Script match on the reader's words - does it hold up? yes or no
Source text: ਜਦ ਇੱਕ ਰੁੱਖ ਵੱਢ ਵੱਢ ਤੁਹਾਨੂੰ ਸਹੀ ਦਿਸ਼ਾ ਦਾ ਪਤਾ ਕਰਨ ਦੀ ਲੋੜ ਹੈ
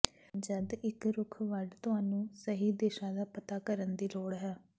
no